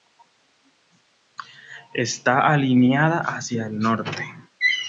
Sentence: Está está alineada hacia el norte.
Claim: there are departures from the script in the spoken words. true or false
true